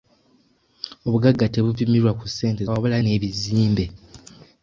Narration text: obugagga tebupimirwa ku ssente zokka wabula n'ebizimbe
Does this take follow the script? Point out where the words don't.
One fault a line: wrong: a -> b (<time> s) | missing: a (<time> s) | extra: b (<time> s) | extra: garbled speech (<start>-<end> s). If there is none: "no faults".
missing: zokka (2.6 s)